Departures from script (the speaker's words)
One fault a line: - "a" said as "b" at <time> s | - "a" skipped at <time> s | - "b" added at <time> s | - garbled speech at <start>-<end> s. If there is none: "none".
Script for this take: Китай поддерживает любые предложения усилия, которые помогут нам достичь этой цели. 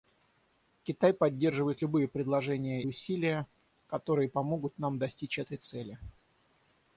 none